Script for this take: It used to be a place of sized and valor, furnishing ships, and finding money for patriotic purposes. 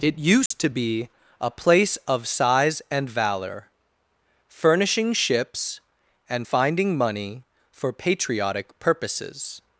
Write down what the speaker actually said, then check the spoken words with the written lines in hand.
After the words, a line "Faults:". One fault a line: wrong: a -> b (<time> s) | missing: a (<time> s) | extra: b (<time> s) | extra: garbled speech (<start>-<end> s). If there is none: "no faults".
It used to be a place of size and valor, furnishing ships, and finding money for patriotic purposes.
Faults:
wrong: sized -> size (2.3 s)